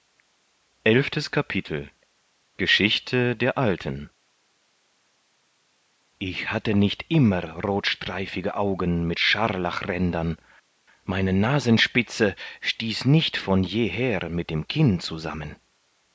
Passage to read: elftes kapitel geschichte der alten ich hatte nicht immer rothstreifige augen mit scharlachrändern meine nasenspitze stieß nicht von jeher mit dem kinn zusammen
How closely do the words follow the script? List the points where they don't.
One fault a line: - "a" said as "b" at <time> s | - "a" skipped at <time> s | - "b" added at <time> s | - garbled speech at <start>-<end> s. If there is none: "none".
none